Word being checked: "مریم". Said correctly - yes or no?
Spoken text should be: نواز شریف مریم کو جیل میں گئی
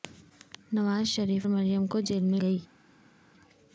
yes